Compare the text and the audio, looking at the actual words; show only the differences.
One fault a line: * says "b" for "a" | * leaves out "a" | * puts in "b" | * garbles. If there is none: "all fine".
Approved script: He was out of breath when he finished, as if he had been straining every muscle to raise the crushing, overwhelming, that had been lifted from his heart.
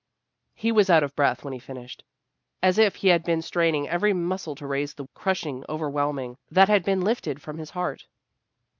all fine